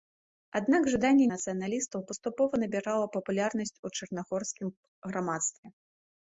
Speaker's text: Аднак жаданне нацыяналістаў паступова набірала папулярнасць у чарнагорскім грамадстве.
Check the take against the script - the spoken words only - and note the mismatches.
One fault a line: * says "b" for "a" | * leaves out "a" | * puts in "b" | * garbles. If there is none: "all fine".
all fine